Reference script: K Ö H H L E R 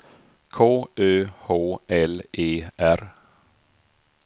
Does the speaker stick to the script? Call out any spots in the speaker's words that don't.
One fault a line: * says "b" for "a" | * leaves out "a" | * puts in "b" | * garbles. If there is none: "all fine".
* leaves out "H"